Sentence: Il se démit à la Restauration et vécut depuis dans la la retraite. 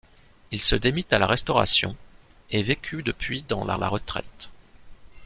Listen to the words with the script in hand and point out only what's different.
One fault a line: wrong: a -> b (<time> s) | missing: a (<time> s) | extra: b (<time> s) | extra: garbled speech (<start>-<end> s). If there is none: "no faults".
no faults